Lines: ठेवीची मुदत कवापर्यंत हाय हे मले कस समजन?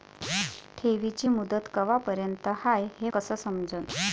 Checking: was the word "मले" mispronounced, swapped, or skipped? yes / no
yes